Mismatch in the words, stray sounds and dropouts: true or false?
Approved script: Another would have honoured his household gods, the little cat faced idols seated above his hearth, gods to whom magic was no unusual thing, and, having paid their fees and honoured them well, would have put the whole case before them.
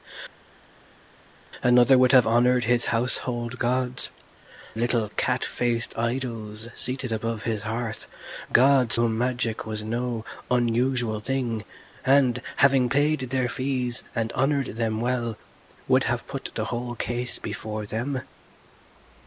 true